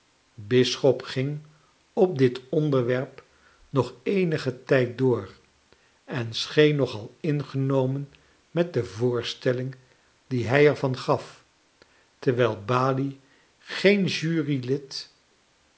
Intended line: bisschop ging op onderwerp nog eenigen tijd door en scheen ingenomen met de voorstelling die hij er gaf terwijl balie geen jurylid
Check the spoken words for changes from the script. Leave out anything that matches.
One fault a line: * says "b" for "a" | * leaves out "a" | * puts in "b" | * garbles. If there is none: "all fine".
* puts in "dit"
* puts in "nog al"
* puts in "van"